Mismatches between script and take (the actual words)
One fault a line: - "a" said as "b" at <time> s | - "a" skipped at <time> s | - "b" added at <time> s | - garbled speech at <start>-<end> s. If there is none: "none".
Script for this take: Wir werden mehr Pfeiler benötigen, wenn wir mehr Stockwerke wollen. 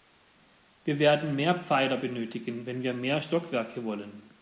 none